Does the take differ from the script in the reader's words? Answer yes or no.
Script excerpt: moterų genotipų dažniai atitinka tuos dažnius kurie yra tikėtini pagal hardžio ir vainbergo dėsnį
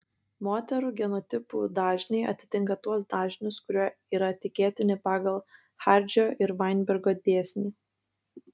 no